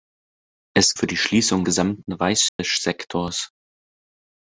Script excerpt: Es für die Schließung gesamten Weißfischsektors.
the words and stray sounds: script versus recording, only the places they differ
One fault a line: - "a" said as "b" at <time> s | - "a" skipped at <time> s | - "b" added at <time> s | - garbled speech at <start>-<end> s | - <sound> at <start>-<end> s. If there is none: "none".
- dropout at 2.5-2.6 s